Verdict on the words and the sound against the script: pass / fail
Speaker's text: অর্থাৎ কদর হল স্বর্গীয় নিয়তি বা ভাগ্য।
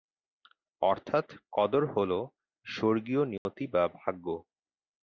fail